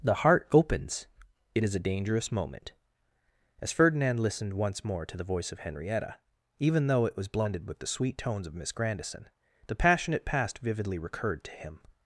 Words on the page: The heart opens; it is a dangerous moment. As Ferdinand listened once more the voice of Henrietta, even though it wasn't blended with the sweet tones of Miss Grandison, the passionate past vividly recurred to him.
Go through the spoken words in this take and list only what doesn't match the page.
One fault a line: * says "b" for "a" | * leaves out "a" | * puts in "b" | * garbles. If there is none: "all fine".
* puts in "to"
* says "was" for "wasn't"